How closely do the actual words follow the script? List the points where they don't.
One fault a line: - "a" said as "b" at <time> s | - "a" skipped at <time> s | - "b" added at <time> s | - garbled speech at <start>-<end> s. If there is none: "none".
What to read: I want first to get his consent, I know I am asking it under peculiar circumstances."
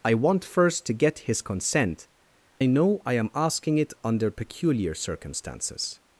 none